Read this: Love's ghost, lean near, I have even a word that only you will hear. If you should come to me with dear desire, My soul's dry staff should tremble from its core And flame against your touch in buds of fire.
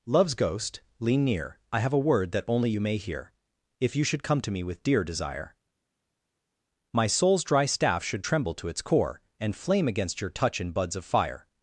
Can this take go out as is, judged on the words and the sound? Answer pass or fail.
fail